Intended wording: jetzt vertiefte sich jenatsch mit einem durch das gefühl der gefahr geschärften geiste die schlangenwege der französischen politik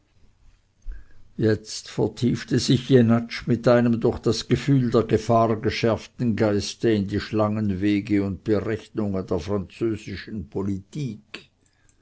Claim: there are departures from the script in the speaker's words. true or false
true